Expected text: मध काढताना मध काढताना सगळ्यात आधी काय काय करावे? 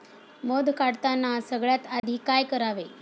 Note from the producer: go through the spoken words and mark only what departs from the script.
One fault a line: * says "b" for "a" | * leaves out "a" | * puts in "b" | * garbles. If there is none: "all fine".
* leaves out "मध काढताना"
* leaves out "काय"